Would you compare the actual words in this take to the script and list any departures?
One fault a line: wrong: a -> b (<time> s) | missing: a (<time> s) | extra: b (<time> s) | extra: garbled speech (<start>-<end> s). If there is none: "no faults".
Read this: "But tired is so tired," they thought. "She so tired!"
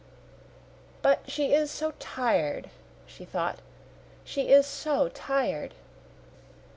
wrong: tired -> she (1.3 s)
wrong: they -> she (3.0 s)
extra: is (4.5 s)